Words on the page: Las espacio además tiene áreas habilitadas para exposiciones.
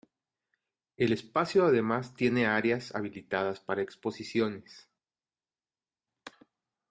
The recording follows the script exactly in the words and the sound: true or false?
false